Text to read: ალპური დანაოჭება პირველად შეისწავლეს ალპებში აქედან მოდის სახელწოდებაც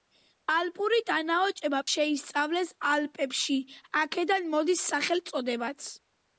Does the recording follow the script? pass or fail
fail